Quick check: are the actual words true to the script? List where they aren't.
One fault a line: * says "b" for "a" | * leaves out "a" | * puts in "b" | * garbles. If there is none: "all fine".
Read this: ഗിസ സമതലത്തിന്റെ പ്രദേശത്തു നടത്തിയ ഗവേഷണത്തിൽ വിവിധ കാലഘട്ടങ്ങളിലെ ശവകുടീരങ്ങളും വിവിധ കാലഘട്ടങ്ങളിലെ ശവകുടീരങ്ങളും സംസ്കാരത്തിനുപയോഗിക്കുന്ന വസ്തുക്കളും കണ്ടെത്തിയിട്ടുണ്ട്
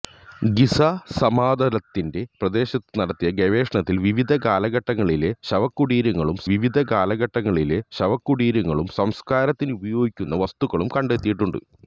all fine